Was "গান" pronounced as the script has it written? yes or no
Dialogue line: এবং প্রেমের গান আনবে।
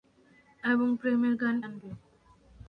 yes